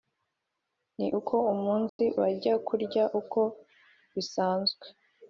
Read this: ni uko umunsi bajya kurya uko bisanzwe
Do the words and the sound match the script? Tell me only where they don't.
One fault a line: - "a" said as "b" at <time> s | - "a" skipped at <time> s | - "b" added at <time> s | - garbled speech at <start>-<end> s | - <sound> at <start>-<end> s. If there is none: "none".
- dropout at 1.9-2.0 s